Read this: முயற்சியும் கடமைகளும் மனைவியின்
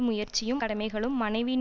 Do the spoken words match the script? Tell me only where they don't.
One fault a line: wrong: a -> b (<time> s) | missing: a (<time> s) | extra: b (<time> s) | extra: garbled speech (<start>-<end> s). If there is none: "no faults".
no faults